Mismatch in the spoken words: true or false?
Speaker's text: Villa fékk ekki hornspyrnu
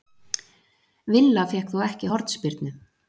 true